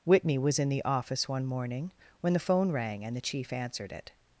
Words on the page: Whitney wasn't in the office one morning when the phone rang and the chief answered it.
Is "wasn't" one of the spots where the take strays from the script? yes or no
yes